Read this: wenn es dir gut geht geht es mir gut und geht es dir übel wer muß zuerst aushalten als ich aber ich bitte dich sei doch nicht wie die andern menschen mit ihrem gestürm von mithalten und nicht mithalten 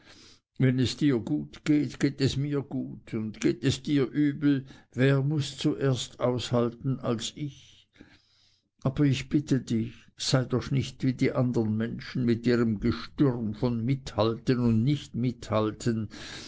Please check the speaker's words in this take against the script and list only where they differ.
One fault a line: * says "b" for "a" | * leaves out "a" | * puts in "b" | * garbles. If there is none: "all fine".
all fine